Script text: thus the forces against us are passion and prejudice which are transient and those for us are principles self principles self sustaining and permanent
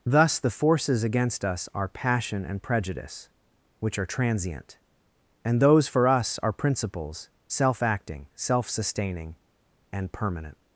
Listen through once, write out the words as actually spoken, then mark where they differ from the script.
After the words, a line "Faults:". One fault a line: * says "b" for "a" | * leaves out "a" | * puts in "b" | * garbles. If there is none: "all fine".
thus the forces against us are passion and prejudice which are transient and those for us are principles self acting self sustaining and permanent
Faults:
* says "acting" for "principles"